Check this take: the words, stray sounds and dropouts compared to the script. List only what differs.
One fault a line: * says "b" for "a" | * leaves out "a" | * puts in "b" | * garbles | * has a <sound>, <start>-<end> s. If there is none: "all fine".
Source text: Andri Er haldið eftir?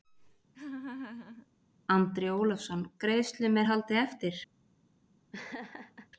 * has a laugh, 0.5-1.5 s
* puts in "Ólafsson Greiðslum"
* has a laugh, 5.3-6.1 s